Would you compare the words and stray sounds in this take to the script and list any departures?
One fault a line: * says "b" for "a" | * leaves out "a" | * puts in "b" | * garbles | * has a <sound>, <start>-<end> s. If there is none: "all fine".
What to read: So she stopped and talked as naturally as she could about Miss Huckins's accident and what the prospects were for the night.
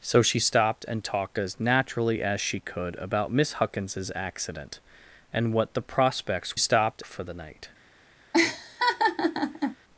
* says "stopped" for "were"
* has a laugh, 8.3-9.8 s